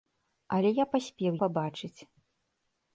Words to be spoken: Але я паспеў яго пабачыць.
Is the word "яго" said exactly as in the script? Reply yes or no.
no